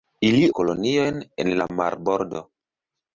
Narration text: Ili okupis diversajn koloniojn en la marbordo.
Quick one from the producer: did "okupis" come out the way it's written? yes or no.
no